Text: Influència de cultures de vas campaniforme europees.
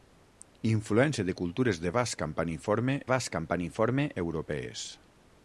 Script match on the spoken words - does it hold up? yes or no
no